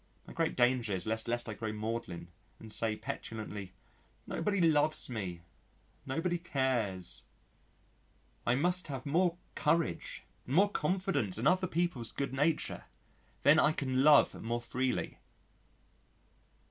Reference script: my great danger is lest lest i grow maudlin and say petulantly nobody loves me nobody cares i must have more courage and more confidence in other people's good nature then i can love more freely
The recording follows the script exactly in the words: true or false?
true